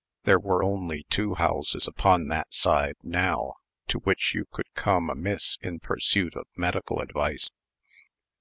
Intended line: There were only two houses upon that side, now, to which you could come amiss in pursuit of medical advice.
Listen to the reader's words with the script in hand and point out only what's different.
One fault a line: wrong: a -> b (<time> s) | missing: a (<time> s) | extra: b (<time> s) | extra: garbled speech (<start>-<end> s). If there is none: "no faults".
no faults